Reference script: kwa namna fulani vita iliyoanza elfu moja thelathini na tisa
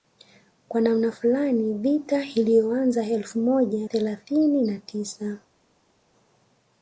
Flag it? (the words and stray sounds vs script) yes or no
no